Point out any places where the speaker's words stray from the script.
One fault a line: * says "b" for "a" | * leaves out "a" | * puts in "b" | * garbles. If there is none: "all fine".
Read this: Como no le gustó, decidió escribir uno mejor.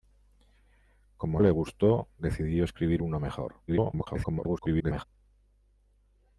* leaves out "no"
* garbles